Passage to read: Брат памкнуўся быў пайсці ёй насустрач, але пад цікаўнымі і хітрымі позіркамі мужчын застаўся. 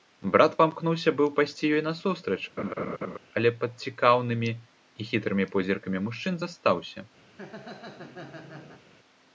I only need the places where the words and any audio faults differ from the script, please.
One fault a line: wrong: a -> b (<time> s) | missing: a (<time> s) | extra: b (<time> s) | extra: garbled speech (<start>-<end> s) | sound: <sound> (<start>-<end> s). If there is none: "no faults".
sound: laugh (2.6-3.2 s)
sound: laugh (7.3-8.8 s)